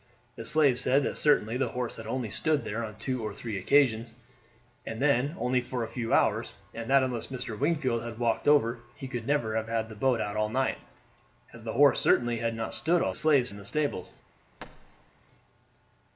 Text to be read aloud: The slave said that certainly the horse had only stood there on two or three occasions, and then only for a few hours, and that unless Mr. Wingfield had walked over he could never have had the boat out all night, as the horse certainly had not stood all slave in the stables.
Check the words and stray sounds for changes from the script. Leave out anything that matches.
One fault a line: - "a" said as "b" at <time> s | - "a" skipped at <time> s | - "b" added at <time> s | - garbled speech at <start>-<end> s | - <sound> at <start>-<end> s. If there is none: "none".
- thud at 14.6-15.1 s